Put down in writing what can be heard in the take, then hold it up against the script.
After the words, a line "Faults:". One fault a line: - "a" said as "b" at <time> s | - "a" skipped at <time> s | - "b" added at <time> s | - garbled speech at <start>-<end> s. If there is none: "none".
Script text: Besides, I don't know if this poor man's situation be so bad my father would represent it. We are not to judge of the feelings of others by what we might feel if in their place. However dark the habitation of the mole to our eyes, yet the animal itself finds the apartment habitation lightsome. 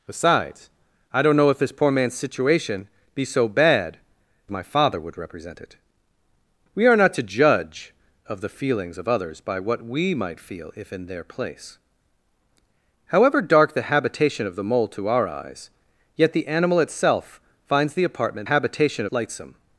Besides, I don't know if this poor man's situation be so bad my father would represent it. We are not to judge of the feelings of others by what we might feel if in their place. However dark the habitation of the mole to our eyes, yet the animal itself finds the apartment habitation lightsome.
Faults:
none